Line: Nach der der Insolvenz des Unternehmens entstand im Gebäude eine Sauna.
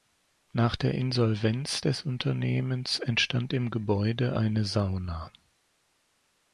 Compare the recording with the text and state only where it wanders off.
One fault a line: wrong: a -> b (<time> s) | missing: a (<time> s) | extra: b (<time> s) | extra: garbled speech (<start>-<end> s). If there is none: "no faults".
missing: der (0.9 s)